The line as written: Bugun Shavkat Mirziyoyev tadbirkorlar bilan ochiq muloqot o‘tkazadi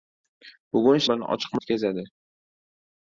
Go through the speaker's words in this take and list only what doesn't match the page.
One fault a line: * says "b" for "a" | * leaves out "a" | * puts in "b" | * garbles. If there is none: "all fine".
* leaves out "Shavkat Mirziyoyev tadbirkorlar"
* leaves out "muloqot"